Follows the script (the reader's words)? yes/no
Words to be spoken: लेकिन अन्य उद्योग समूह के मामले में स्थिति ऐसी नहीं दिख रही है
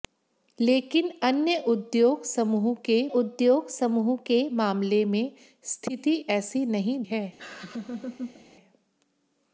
no